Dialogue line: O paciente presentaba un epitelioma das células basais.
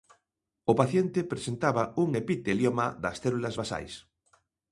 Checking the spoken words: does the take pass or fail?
pass